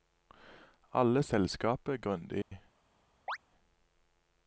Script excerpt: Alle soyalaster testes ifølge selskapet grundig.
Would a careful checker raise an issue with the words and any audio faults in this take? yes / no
yes